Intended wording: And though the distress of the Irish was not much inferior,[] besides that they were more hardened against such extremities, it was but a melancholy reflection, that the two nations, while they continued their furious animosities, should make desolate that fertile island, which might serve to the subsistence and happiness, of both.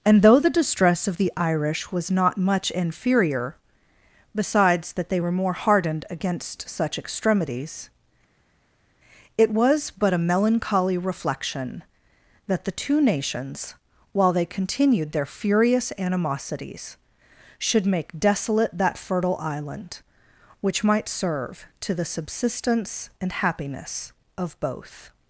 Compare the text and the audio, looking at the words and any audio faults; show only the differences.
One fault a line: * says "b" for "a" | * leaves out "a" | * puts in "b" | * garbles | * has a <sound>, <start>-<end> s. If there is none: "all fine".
all fine